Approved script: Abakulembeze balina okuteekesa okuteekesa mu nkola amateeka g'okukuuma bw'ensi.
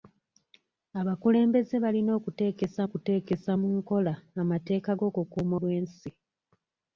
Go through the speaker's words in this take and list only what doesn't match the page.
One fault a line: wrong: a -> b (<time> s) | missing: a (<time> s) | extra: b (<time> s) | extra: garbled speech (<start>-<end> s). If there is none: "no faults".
no faults